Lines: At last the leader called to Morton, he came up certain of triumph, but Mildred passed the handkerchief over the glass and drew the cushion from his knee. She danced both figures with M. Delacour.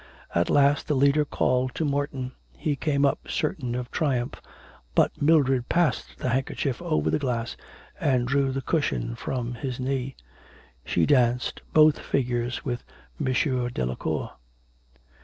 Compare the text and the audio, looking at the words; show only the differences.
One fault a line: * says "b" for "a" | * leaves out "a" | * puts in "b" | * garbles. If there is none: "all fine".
all fine